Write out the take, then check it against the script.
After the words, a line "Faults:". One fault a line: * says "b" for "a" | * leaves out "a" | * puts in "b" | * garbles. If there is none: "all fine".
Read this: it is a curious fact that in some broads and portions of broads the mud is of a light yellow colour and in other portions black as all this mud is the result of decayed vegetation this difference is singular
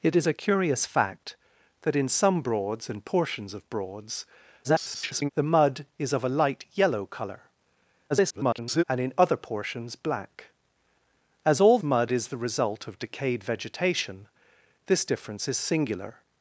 it is a curious fact that in some broads and portions of broads [garbled] the mud is of a light yellow colour [garbled] and in other portions black as all mud is the result of decayed vegetation this difference is singular
Faults:
* garbles
* garbles
* leaves out "this"